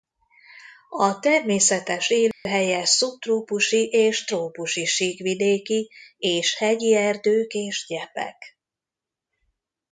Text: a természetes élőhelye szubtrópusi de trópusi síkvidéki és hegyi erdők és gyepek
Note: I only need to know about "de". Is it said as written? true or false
false